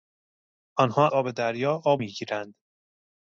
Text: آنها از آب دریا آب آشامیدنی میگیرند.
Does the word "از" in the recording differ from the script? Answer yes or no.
yes